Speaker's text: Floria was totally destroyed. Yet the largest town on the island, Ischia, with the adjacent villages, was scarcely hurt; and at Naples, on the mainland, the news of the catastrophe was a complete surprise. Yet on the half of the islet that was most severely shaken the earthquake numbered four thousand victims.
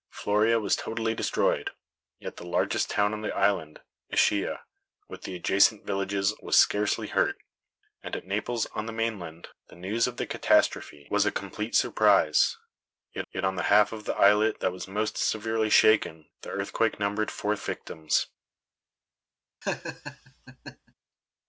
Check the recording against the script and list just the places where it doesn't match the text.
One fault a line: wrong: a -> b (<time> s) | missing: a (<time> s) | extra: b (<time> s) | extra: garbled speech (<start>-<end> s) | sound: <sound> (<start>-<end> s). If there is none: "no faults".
extra: yet (13.3 s)
missing: thousand (17.5 s)
sound: laugh (19.6-20.9 s)